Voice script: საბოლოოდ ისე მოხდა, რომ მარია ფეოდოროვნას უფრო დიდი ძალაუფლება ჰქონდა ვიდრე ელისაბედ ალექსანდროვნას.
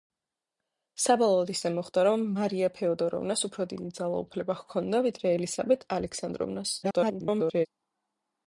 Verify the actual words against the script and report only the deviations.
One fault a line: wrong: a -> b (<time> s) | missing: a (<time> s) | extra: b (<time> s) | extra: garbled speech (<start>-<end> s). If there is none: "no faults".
extra: garbled speech (6.8-7.7 s)